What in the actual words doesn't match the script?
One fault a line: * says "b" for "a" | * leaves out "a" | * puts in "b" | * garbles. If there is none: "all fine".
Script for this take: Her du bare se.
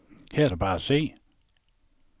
all fine